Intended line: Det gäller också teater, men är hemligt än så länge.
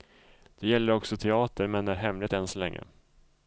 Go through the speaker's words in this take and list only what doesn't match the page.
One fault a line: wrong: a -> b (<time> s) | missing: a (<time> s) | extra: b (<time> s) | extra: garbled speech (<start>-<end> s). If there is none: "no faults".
no faults